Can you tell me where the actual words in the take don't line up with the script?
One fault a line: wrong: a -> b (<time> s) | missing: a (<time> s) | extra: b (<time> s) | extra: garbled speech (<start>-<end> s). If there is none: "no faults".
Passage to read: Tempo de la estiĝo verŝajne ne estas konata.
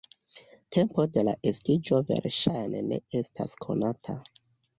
no faults